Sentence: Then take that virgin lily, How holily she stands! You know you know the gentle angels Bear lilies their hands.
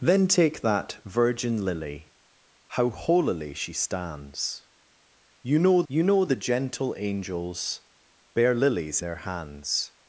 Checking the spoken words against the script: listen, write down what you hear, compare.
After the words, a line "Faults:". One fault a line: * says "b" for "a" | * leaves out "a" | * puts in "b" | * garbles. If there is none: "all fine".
Then take that virgin lily, How holily she stands! You know you know the gentle angels Bear lilies their hands.
Faults:
all fine